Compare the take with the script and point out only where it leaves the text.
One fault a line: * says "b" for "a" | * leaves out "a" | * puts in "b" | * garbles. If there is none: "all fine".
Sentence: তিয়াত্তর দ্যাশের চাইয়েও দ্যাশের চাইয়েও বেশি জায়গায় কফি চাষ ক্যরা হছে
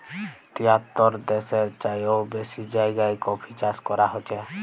* leaves out "দ্যাশের চাইয়েও"